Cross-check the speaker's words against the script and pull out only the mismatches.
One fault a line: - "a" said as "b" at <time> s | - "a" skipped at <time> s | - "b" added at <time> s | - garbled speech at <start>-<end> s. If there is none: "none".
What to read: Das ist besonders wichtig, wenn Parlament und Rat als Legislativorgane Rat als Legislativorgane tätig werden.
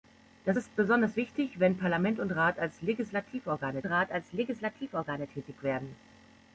none